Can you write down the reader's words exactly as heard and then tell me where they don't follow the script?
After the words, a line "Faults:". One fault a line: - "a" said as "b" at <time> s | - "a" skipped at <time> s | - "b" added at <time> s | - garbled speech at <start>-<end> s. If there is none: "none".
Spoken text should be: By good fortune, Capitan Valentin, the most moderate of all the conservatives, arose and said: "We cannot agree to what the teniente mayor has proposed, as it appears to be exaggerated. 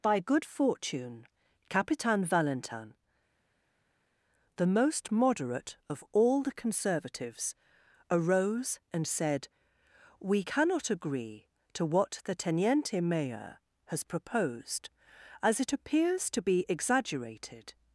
By good fortune, Capitan Valentin, the most moderate of all the conservatives, arose and said: "We cannot agree to what the teniente mayor has proposed, as it appears to be exaggerated.
Faults:
none